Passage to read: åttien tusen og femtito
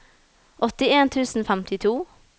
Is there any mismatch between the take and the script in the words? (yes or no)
no